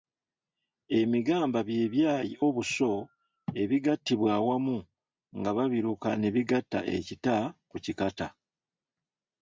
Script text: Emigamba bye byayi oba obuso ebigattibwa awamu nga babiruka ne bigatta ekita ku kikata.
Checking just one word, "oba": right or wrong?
wrong